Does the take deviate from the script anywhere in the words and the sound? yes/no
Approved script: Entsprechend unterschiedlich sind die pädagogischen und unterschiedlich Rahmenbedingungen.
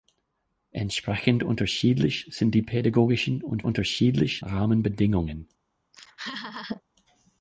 yes